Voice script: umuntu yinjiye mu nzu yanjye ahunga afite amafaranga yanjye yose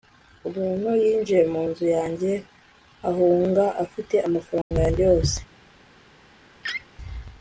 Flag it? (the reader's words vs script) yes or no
no